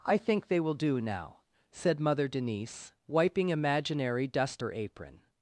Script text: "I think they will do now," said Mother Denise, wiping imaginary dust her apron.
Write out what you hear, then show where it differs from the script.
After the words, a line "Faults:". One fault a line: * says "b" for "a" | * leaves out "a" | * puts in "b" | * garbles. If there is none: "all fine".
"I think they will do now," said Mother Denise, wiping imaginary dust her apron.
Faults:
all fine